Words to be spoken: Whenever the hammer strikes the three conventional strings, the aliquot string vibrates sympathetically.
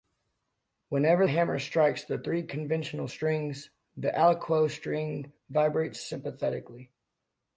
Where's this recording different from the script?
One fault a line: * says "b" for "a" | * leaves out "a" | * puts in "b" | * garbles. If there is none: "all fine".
* leaves out "the"